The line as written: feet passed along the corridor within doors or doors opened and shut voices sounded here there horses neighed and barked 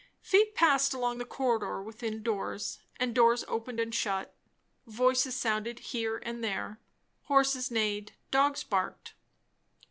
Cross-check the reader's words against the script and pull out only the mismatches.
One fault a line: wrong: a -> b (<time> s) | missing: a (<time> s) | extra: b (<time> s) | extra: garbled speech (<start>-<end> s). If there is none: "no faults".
wrong: or -> and (3.0 s)
extra: and (6.2 s)
wrong: and -> dogs (8.3 s)